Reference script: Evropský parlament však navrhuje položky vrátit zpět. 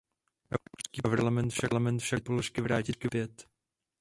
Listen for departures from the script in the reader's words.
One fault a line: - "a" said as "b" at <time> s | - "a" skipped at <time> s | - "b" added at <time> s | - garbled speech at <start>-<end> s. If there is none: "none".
none